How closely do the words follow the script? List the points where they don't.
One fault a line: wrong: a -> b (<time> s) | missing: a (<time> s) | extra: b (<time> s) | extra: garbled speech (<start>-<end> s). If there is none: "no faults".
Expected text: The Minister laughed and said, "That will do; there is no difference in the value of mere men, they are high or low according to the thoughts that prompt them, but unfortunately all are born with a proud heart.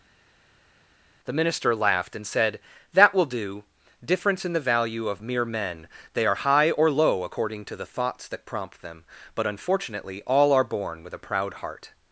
missing: there is no (3.6 s)